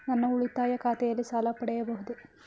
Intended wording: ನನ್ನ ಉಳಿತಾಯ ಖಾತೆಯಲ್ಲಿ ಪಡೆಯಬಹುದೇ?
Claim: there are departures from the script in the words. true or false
true